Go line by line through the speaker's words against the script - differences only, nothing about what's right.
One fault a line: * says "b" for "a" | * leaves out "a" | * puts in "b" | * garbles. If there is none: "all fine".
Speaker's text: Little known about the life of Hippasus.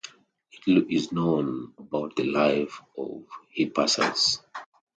* puts in "is"